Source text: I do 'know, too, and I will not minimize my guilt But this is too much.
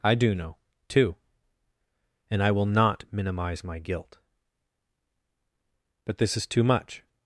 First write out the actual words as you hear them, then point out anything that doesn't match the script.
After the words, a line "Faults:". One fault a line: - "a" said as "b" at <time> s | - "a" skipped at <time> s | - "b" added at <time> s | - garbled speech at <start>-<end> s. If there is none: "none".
I do 'know, too, and I will not minimize my guilt But this is too much.
Faults:
none